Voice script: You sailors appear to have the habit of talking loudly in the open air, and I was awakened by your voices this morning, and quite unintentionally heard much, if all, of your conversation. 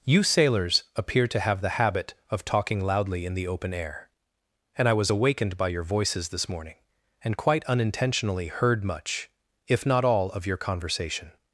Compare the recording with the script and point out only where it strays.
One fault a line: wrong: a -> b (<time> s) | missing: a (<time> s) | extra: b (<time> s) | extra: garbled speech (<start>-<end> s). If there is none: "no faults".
extra: not (9.8 s)